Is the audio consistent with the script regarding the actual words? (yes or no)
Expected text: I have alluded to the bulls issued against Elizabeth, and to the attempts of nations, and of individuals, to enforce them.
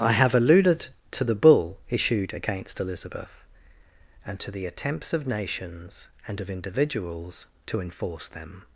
no